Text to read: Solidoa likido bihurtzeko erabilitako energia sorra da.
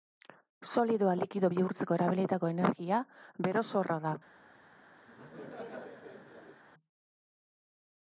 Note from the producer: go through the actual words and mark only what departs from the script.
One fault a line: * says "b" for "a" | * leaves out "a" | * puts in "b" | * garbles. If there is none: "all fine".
* puts in "bero"